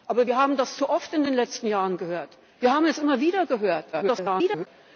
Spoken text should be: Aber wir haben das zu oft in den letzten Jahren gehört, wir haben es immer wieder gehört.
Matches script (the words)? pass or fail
fail